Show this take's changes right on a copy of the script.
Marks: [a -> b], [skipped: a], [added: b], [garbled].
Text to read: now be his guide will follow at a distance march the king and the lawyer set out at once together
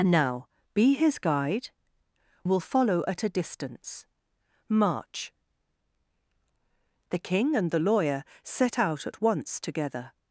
now be his guide will follow at a distance march the king and the lawyer set out at once together